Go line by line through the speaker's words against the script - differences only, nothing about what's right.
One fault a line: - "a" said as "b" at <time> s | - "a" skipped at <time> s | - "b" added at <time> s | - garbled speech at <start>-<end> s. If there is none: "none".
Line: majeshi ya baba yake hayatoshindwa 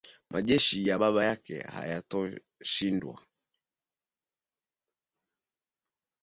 none